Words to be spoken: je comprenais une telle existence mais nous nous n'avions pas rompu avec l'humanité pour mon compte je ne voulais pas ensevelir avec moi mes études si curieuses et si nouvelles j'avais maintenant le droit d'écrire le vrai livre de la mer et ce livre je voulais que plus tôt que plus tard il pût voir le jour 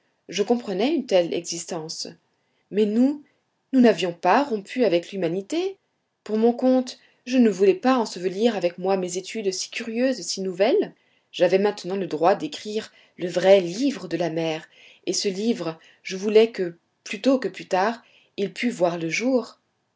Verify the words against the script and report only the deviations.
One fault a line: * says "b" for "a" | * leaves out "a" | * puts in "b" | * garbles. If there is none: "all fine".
all fine